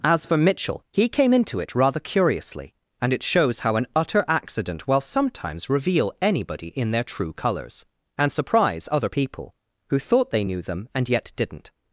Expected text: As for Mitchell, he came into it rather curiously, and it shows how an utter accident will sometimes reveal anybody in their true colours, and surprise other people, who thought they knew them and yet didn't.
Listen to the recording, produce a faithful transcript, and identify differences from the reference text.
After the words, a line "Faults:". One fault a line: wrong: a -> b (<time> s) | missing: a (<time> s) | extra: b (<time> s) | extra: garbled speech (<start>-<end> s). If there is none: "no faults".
As for Mitchell, he came into it rather curiously, and it shows how an utter accident will sometimes reveal anybody in their true colours, and surprise other people, who thought they knew them and yet didn't.
Faults:
no faults